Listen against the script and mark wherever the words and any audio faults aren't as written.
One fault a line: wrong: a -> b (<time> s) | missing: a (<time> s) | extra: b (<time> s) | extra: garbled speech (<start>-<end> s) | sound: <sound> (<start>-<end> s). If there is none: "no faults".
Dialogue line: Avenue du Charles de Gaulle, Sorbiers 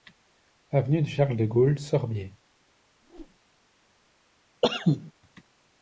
sound: whoosh (3.0-3.4 s)
sound: cough (4.6-5.1 s)